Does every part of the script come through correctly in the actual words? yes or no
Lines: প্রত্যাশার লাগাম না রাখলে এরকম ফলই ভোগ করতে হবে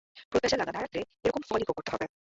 yes